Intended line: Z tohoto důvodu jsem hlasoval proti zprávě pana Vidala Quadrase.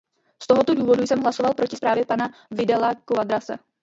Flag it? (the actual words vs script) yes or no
no